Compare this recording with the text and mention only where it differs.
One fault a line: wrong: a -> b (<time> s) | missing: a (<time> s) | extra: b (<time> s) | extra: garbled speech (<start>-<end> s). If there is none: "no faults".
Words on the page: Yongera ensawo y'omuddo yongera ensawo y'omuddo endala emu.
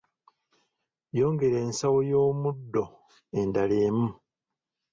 missing: yongera ensawo y'omuddo (2.8 s)